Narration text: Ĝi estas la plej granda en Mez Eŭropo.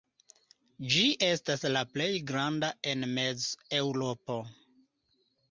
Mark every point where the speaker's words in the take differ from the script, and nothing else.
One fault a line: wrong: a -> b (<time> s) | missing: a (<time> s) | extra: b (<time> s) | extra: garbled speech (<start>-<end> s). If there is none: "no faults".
no faults